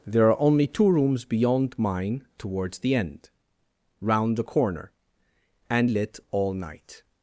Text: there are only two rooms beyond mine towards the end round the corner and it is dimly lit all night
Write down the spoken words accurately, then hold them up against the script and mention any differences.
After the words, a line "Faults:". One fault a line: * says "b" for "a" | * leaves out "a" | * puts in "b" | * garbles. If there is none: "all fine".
there are only two rooms beyond mine towards the end round the corner and lit all night
Faults:
* leaves out "it is dimly"